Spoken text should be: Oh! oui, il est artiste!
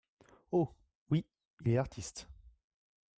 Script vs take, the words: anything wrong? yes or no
no